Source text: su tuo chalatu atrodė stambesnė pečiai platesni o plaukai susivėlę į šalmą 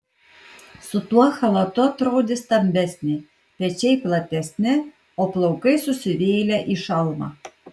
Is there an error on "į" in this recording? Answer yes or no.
no